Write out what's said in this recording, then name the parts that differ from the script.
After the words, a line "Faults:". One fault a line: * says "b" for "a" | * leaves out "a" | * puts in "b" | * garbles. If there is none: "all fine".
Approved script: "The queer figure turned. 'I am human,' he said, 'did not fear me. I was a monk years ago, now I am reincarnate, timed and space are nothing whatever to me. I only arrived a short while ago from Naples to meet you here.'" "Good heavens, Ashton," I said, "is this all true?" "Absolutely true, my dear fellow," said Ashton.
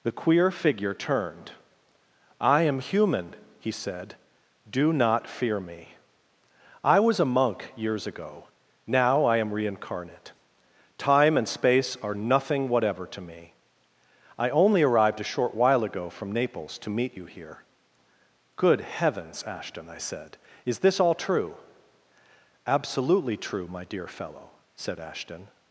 "The queer figure turned. 'I am human,' he said, 'do not fear me. I was a monk years ago, now I am reincarnate, time and space are nothing whatever to me. I only arrived a short while ago from Naples to meet you here.'" "Good heavens, Ashton," I said, "is this all true?" "Absolutely true, my dear fellow," said Ashton.
Faults:
* says "do" for "did"
* says "time" for "timed"